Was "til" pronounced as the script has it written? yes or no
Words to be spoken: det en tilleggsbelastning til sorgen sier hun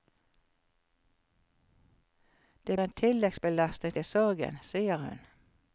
yes